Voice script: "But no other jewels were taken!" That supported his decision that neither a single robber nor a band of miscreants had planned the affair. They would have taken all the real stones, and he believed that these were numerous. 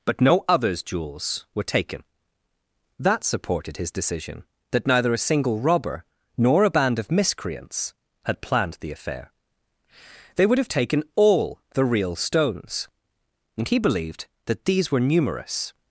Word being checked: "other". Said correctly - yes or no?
no